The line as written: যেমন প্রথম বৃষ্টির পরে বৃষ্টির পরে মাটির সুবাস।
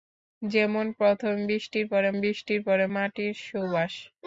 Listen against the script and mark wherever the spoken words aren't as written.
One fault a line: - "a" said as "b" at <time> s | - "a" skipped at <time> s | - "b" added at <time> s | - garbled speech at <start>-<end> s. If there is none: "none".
none